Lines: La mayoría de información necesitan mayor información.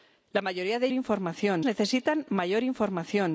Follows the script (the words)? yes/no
yes